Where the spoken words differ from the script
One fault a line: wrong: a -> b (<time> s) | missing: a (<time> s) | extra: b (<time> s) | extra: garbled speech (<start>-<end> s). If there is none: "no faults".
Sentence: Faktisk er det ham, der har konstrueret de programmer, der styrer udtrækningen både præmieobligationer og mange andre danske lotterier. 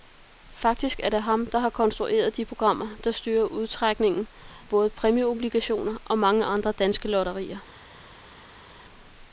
no faults